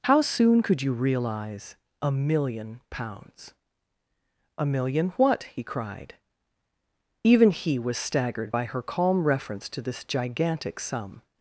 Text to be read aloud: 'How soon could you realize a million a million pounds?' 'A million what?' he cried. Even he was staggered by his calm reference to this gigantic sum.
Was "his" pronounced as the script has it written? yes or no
no